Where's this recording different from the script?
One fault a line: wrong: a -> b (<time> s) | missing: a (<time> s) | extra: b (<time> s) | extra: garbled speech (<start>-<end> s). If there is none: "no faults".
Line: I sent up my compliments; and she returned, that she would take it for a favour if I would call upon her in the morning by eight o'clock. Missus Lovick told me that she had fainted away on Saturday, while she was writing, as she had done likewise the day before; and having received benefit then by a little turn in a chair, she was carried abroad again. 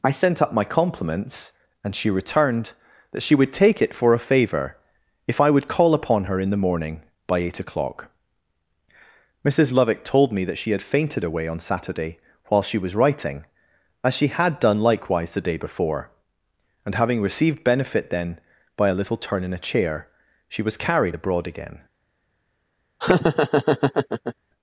no faults